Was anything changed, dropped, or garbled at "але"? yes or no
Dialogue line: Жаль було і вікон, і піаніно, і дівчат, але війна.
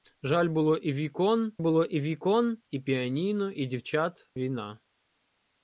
yes